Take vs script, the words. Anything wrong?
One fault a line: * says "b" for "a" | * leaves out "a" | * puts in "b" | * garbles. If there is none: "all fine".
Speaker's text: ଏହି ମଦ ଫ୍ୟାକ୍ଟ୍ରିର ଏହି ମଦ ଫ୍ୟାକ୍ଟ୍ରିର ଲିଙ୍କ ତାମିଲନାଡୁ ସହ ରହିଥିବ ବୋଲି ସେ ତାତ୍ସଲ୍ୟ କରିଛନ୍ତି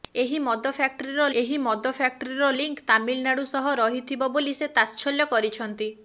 all fine